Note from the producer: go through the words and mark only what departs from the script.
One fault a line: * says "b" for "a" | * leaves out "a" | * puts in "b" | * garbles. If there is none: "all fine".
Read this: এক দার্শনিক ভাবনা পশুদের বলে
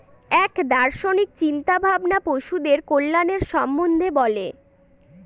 * puts in "চিন্তা"
* puts in "কল্যাণের সম্বন্ধে"